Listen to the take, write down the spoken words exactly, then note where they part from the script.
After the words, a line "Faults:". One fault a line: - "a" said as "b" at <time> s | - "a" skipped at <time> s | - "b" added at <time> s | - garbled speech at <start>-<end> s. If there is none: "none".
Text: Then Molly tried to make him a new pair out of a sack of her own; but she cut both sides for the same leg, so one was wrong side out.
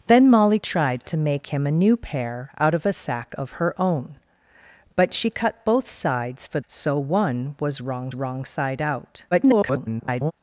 Then Molly tried to make him a new pair out of a sack of her own; but she cut both sides for so one was wrong wrong side out. [garbled]
Faults:
- "the same leg" skipped at 6.6 s
- "wrong" added at 8.1 s
- garbled speech at 9.3-10.3 s